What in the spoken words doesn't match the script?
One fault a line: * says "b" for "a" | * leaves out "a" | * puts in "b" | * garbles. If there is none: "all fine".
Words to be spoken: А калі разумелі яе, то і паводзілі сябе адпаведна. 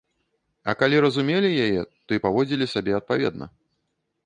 all fine